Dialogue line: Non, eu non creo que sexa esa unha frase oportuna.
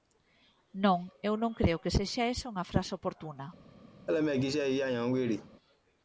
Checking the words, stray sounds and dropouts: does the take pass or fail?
fail